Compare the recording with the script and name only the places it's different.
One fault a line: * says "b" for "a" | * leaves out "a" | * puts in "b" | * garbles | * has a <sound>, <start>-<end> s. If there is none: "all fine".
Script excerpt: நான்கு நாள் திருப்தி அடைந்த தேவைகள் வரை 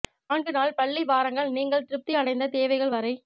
* puts in "பள்ளி வாரங்கள் நீங்கள்"